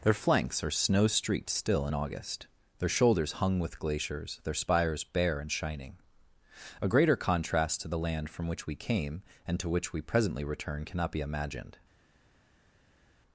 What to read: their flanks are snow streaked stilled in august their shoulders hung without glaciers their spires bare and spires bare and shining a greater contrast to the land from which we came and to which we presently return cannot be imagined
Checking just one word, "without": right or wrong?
wrong